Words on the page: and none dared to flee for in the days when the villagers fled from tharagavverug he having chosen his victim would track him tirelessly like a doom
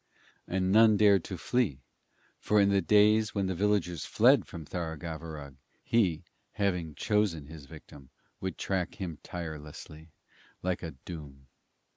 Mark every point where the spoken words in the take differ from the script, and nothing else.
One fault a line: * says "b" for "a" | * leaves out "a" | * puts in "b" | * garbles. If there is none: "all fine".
all fine